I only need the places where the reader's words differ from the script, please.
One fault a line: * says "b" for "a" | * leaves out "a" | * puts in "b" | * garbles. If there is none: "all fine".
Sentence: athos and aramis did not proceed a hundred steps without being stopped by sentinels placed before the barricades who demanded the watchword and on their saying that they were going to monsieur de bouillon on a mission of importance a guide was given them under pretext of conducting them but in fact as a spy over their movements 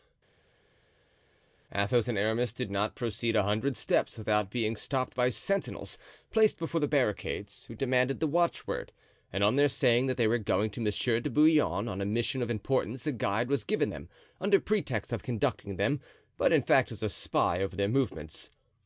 all fine